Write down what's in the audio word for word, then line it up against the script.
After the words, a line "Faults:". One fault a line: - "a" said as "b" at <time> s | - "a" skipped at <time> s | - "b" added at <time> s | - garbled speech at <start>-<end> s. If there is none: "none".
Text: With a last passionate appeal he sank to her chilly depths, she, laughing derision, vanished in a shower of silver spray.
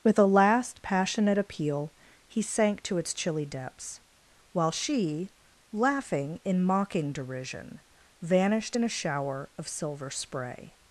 With a last passionate appeal he sank to its chilly depths, while she, laughing in mocking derision, vanished in a shower of silver spray.
Faults:
- "her" said as "its" at 3.0 s
- "while" added at 4.5 s
- "in mocking" added at 6.5 s